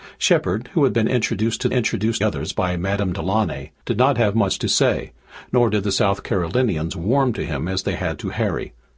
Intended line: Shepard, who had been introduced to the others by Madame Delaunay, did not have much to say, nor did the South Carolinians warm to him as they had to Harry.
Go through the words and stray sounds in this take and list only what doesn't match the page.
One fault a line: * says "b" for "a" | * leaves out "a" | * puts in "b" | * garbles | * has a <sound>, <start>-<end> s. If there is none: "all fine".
* says "introduced" for "the"